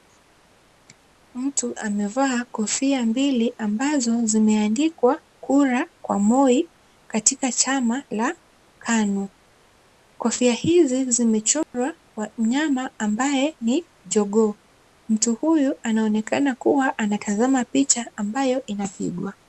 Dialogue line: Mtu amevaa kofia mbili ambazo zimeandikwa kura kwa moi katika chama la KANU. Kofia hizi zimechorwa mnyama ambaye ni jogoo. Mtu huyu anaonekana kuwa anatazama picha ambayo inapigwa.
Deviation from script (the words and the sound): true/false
true